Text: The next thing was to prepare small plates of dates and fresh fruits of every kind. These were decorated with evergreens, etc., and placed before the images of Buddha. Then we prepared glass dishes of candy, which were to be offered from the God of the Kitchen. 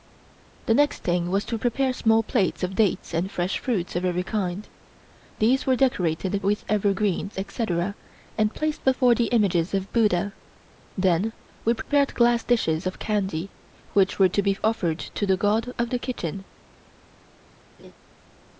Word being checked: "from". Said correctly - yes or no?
no